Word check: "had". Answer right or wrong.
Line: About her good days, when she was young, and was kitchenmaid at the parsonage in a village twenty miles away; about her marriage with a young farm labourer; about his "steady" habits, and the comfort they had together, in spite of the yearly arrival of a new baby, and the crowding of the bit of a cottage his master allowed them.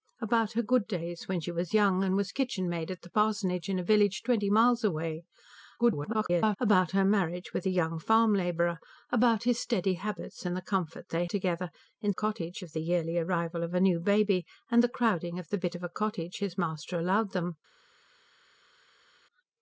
wrong